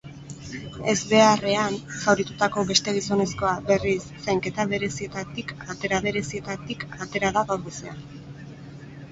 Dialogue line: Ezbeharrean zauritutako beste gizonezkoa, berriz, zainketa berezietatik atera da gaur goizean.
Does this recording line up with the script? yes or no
no